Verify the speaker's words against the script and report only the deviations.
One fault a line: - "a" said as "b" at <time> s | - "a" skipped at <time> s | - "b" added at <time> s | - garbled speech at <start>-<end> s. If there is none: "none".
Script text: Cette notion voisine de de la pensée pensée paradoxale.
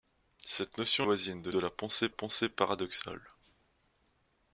none